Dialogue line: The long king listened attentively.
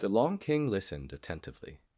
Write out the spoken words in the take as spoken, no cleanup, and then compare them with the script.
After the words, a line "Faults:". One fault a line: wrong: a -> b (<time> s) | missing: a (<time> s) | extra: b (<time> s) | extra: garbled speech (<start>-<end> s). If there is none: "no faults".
The long king listened attentively.
Faults:
no faults